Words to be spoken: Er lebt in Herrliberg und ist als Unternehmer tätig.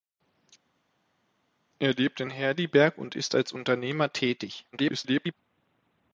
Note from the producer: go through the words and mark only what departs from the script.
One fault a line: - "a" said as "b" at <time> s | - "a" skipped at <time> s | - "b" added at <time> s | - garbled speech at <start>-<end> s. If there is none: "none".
- garbled speech at 4.7-5.3 s